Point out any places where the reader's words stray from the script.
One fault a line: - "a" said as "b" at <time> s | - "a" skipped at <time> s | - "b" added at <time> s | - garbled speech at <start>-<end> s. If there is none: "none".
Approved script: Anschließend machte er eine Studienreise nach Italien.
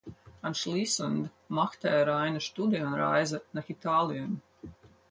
none